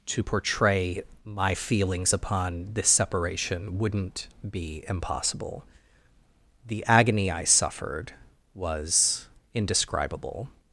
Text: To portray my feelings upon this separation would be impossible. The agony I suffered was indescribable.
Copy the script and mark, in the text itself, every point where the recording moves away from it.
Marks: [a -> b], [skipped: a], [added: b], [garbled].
To portray my feelings upon this separation [would -> wouldn't] be impossible. The agony I suffered was indescribable.